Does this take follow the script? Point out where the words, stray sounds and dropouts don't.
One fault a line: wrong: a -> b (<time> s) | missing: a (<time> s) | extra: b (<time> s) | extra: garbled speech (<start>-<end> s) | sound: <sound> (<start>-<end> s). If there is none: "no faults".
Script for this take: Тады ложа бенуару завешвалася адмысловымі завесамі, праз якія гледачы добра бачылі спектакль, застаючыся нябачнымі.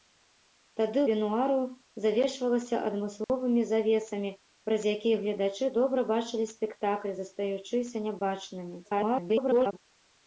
missing: ложа (1.0 s)
sound: dropout (3.2-3.3 s)
extra: garbled speech (8.8-9.8 s)